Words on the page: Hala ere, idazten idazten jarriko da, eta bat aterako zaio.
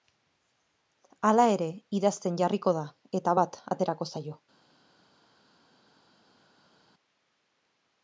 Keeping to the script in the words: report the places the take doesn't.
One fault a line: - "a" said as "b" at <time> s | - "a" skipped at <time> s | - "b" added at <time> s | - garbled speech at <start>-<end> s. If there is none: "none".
- "idazten" skipped at 2.4 s